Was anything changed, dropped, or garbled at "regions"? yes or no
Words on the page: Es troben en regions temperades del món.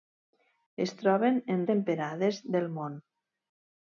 yes